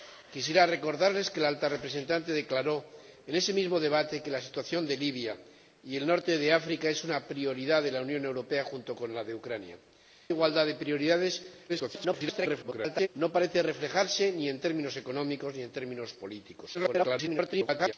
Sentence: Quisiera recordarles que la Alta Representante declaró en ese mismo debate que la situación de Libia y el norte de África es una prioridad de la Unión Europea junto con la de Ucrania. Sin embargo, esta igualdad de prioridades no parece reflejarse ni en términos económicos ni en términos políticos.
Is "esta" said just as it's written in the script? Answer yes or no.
no